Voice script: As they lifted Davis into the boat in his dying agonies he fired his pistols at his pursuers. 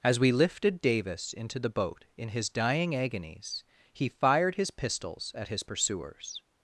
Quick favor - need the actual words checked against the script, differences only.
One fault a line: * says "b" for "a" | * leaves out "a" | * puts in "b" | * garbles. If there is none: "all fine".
* says "we" for "they"